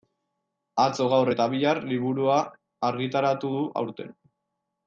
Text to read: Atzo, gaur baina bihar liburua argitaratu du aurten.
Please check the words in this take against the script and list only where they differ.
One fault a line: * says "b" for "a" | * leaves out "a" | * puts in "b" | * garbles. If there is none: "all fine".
* says "eta" for "baina"